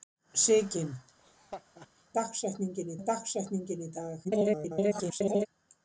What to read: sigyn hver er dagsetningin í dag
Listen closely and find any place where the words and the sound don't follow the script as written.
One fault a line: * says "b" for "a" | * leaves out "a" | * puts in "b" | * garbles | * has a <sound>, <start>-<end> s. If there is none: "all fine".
* has a laugh, 1.2-1.9 s
* says "dagsetningin" for "hver"
* garbles